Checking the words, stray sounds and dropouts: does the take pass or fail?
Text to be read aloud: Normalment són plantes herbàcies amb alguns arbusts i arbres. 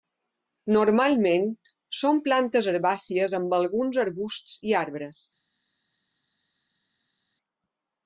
pass